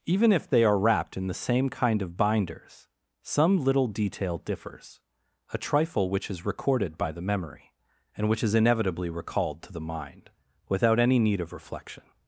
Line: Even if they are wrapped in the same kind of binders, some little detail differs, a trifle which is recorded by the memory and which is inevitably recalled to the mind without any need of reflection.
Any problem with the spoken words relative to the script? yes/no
no